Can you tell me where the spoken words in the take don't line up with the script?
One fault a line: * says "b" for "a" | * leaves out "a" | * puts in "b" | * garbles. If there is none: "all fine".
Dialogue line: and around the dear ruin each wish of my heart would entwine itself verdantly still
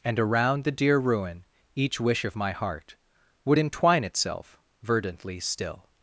all fine